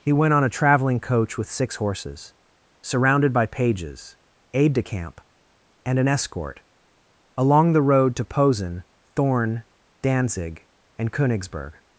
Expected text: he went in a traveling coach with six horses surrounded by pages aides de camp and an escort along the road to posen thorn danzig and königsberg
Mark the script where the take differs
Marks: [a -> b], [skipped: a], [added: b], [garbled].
he went [in -> on] a traveling coach with six horses surrounded by pages [aides -> aide] de camp and an escort along the road to posen thorn danzig and königsberg